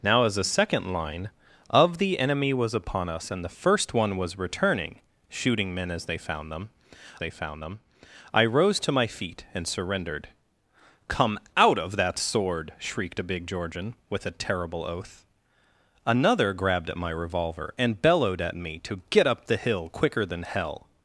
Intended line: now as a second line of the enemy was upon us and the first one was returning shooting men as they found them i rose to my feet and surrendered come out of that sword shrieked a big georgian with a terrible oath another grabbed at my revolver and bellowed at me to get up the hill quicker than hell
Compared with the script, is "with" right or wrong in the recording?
right